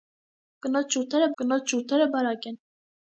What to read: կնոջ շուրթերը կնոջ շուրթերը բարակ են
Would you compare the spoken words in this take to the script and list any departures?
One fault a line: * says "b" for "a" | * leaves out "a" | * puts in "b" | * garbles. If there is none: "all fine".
all fine